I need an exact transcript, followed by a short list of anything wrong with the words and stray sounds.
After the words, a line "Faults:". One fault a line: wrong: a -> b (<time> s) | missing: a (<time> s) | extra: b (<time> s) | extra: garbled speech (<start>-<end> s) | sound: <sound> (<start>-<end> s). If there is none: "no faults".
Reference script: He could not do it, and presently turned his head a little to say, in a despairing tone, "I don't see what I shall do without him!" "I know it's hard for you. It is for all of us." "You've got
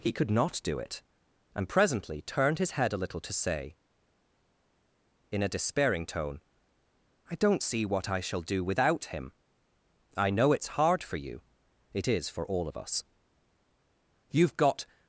He could not do it, and presently turned his head a little to say, in a despairing tone, "I don't see what I shall do without him!" "I know it's hard for you. It is for all of us." "You've got
Faults:
no faults